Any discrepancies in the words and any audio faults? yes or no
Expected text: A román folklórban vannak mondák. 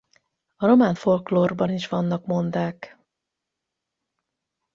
yes